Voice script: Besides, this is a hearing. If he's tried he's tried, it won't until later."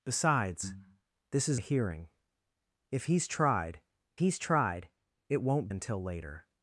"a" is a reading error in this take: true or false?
false